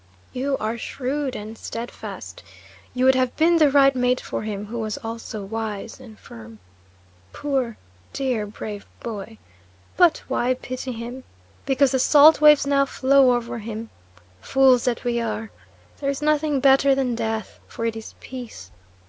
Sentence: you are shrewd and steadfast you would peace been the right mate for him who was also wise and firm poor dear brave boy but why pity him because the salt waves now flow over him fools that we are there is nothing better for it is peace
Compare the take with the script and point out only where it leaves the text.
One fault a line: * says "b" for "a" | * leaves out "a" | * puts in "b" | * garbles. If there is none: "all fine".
* says "have" for "peace"
* puts in "than death"